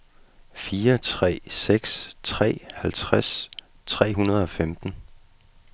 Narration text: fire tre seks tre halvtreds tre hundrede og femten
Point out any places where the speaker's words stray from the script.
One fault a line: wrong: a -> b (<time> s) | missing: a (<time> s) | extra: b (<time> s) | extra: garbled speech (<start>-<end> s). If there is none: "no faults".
no faults